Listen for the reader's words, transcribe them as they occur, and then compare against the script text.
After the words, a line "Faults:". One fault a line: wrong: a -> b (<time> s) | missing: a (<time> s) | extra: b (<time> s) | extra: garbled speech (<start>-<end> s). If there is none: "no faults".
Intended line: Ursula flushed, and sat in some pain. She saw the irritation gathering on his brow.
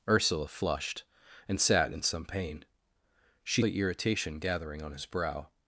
Ursula flushed, and sat in some pain. She the irritation gathering on his brow.
Faults:
missing: saw (3.6 s)